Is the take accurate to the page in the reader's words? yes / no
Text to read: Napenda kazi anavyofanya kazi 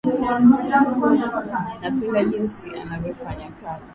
no